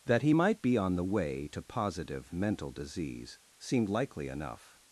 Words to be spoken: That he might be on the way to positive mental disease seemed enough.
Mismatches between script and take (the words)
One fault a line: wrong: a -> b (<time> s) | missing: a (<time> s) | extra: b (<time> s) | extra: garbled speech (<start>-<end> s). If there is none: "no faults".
extra: likely (3.9 s)